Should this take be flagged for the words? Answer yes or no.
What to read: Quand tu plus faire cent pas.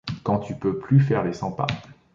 yes